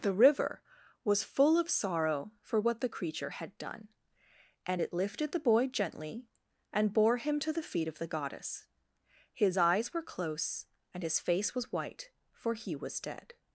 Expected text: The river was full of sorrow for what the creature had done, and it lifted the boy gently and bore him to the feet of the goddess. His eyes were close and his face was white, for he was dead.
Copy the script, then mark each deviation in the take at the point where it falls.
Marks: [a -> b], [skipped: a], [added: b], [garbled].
The river was full of sorrow for what the creature had done, and it lifted the boy gently and bore him to the feet of the goddess. His eyes were close and his face was white, for he was dead.